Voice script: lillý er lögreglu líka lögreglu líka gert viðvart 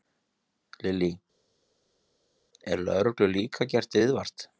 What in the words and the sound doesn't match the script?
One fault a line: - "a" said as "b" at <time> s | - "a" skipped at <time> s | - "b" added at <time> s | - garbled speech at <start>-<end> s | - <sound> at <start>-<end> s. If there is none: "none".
- "lögreglu líka" skipped at 3.7 s